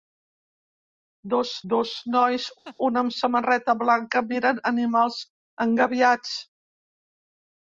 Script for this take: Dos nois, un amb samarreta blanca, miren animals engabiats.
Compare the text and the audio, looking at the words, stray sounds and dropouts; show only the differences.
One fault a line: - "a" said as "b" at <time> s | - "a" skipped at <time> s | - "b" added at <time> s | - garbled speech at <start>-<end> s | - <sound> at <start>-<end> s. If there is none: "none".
- "dos" added at 1.7 s
- laugh at 2.6-2.8 s